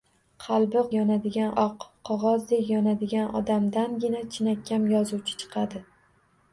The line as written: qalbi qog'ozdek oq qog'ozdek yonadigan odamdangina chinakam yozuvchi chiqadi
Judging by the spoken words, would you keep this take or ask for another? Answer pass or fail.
fail